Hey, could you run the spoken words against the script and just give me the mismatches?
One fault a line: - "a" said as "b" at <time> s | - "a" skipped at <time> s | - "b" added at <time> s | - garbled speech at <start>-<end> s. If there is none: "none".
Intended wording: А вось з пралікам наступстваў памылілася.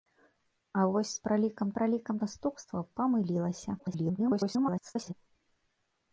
- "пралікам" added at 1.8 s
- garbled speech at 3.8-5.1 s